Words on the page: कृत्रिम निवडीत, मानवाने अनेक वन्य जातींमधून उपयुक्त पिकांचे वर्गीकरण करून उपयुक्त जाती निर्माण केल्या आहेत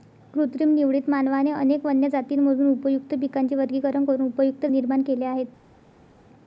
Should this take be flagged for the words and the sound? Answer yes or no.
yes